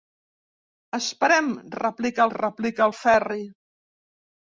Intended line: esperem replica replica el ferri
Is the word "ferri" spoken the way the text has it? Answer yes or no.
yes